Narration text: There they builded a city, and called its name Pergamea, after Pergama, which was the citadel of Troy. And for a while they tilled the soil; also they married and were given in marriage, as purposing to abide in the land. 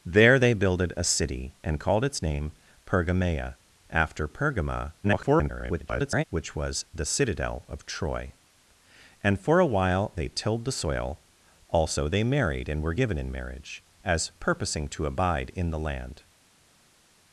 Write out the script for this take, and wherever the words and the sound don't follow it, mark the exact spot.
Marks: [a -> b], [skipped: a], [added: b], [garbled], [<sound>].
There they builded a city, and called its name Pergamea, after Pergama, [garbled] which was the citadel of Troy. And for a while they tilled the soil; also they married and were given in marriage, as purposing to abide in the land.